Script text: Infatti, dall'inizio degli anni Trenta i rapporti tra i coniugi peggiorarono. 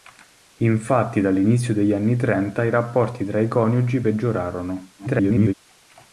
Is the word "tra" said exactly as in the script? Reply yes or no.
yes